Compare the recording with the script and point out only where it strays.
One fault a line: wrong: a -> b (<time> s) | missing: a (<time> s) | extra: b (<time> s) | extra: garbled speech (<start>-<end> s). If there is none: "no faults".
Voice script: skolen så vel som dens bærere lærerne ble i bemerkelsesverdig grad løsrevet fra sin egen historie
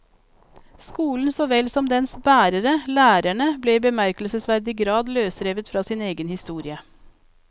no faults